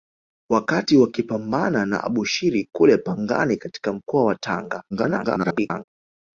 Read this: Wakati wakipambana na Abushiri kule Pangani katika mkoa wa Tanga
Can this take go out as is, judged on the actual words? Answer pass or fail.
fail